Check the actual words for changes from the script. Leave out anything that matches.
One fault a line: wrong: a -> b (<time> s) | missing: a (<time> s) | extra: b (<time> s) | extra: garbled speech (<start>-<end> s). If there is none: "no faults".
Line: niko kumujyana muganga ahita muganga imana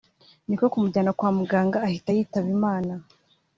extra: kwa (1.2 s)
wrong: muganga -> yitaba (2.2 s)